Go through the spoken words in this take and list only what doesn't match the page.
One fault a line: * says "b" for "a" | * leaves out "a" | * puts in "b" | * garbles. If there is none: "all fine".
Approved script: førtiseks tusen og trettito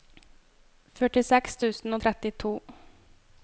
all fine